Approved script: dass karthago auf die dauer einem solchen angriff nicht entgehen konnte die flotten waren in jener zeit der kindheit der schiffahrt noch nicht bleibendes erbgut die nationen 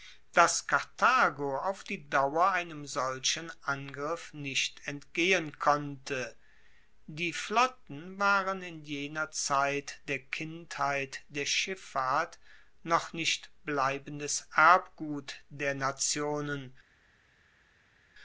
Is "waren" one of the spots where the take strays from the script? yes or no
no